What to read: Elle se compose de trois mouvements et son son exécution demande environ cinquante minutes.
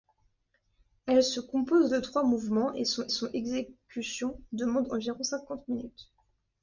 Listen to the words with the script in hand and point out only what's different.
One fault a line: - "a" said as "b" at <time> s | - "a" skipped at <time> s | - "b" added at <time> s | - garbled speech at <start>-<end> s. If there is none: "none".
none